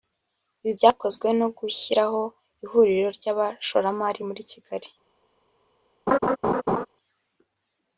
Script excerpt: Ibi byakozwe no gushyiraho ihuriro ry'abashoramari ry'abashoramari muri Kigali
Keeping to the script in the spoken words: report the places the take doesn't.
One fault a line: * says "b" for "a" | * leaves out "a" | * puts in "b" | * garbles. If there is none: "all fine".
* leaves out "ry'abashoramari"